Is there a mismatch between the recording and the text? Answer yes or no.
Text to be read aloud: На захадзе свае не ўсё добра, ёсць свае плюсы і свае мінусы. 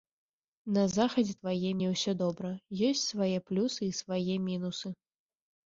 no